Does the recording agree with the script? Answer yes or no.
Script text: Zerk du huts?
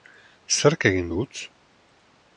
no